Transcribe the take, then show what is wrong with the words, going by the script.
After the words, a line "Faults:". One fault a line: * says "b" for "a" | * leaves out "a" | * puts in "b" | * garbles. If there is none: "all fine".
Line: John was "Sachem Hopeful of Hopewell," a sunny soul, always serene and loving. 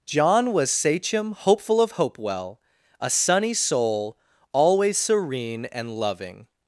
John was "Sachem Hopeful of Hopewell," a sunny soul, always serene and loving.
Faults:
all fine